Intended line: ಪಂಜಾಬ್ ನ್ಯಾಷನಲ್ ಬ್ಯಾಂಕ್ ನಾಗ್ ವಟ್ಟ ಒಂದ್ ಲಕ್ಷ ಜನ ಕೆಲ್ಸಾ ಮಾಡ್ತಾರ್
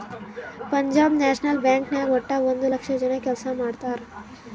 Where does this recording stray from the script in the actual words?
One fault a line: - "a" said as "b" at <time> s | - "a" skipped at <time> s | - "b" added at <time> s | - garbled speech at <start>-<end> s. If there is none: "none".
none